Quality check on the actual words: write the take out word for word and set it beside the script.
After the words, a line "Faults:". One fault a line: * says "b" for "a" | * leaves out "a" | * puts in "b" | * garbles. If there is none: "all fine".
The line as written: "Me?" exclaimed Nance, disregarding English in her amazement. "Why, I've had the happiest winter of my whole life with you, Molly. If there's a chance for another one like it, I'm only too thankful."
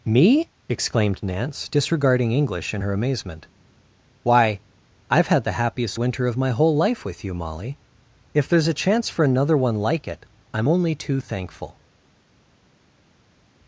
"Me?" exclaimed Nance, disregarding English in her amazement. "Why, I've had the happiest winter of my whole life with you, Molly. If there's a chance for another one like it, I'm only too thankful."
Faults:
all fine